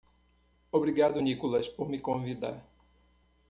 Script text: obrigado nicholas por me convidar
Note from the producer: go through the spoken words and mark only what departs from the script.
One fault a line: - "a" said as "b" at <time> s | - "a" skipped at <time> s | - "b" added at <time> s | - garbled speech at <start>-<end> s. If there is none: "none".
none